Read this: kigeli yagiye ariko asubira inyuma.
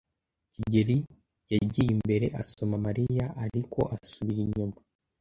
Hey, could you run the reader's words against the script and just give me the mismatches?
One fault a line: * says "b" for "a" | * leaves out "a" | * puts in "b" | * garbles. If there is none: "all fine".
* puts in "imbere asoma Mariya"